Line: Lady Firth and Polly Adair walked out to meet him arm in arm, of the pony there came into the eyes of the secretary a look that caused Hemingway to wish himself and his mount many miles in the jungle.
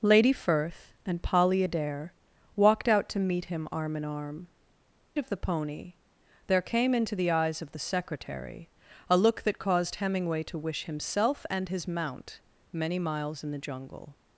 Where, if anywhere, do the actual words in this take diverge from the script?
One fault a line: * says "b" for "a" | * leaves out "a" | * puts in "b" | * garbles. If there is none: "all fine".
all fine